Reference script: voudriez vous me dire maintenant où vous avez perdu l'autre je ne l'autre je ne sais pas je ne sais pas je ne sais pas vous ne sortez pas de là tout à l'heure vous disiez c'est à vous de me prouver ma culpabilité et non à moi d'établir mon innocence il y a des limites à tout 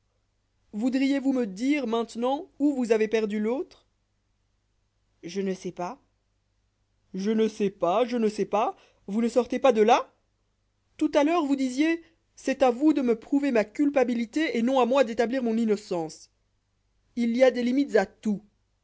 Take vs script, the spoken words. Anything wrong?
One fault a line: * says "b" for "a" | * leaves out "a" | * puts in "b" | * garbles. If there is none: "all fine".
* leaves out "l'autre je ne"